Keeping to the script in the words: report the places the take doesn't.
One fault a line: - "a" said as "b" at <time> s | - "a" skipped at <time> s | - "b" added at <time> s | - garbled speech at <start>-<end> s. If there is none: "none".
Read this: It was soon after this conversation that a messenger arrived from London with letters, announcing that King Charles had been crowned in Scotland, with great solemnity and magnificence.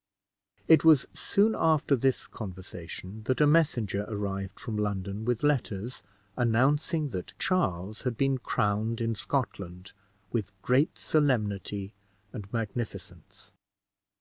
- "King" skipped at 7.3 s